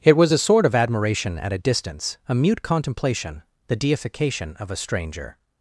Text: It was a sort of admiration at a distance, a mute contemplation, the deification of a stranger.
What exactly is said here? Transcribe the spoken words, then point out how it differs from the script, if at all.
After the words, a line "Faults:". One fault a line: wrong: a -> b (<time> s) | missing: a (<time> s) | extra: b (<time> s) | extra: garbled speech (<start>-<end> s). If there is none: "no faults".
It was a sort of admiration at a distance, a mute contemplation, the deification of a stranger.
Faults:
no faults